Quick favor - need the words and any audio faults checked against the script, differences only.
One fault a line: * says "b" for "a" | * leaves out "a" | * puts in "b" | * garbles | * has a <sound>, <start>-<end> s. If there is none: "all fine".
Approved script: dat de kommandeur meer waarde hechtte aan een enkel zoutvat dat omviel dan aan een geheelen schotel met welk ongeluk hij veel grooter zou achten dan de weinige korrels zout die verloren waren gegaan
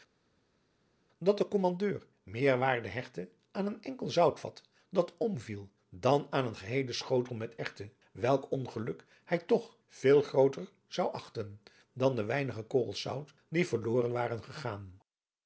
* puts in "erwten"
* puts in "toch"